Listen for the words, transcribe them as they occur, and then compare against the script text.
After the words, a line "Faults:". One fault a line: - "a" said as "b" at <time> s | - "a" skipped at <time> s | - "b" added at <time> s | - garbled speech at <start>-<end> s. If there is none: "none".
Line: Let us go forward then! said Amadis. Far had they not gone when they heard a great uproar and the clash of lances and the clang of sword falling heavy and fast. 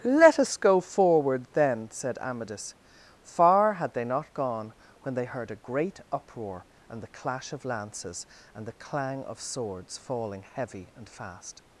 Let us go forward then! said Amadis. Far had they not gone when they heard a great uproar and the clash of lances and the clang of swords falling heavy and fast.
Faults:
- "sword" said as "swords" at 9.4 s